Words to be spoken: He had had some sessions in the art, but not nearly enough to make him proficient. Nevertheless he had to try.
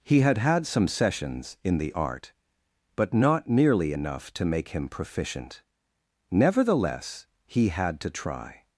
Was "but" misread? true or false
false